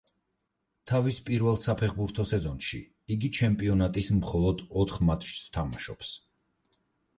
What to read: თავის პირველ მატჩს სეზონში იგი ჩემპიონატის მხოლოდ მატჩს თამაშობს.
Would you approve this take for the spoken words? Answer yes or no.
no